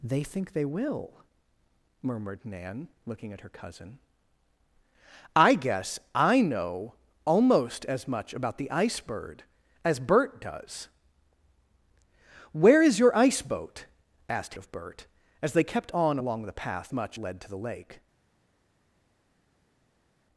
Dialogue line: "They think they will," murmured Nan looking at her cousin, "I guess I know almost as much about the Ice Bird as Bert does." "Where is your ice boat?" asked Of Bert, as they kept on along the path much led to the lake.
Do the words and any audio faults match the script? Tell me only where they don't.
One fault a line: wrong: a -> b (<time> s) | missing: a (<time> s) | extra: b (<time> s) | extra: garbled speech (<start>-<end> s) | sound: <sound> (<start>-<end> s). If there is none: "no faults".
no faults